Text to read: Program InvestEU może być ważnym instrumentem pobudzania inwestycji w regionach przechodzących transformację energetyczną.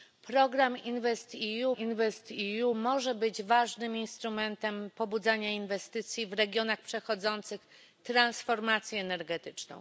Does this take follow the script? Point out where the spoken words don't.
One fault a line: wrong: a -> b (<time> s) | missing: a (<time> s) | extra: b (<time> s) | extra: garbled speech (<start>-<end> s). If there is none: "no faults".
extra: InvestEU (1.7 s)